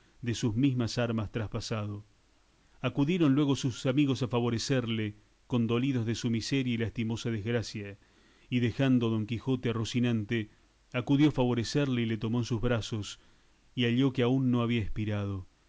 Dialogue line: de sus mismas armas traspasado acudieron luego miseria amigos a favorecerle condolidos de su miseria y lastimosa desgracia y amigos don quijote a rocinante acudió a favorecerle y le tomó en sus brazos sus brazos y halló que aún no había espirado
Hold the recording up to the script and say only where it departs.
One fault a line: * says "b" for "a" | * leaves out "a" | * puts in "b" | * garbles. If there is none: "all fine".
* says "sus" for "miseria"
* says "dejando" for "amigos"
* leaves out "sus brazos"